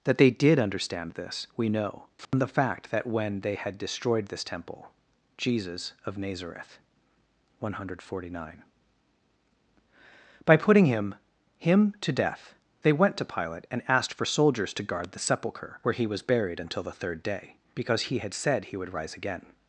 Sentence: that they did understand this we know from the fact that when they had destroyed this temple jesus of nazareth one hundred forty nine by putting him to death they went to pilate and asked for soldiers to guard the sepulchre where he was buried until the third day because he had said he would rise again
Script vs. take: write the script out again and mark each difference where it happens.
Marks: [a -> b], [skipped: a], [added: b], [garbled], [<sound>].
that they did understand this we know from [dropout] the fact that when they had destroyed this temple jesus of nazareth one hundred forty nine by putting him [added: him] to death they went to pilate and asked for soldiers to guard the sepulchre where he was buried until the third day because he had said he would rise again